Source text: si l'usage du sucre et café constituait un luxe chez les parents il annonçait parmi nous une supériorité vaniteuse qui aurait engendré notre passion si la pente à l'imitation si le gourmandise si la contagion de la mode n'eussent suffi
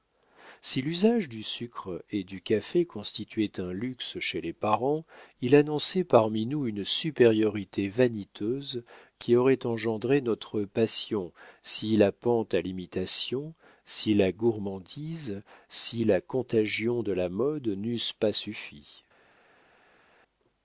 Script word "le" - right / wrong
wrong